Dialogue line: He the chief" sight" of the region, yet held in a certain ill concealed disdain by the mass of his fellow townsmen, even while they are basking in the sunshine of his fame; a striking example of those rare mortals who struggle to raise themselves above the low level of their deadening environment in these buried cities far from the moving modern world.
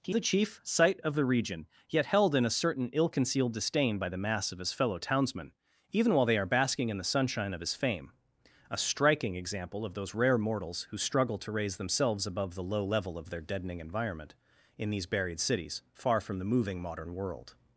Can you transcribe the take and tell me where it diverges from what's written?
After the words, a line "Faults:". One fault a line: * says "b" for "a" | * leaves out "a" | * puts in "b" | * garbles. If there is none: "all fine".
He the chief" sight" of the region, yet held in a certain ill concealed disdain by the mass of his fellow townsmen, even while they are basking in the sunshine of his fame; a striking example of those rare mortals who struggle to raise themselves above the low level of their deadening environment in these buried cities far from the moving modern world.
Faults:
all fine